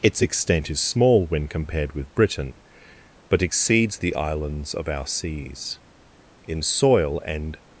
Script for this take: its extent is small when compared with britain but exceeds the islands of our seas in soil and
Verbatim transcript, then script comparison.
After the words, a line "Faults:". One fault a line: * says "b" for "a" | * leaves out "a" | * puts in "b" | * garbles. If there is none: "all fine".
its extent is small when compared with britain but exceeds the islands of our seas in soil and
Faults:
all fine